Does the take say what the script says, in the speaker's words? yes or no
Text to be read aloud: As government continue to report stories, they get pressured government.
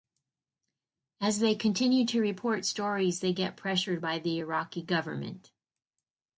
no